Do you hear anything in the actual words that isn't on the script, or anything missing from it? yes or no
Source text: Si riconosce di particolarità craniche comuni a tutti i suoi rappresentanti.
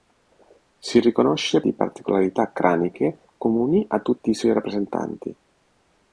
no